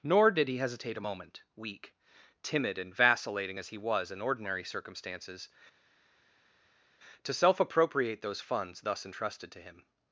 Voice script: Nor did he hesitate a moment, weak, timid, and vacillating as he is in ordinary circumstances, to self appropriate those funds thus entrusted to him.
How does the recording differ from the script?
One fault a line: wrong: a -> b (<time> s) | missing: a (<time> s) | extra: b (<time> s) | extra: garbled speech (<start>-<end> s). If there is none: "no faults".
wrong: is -> was (3.8 s)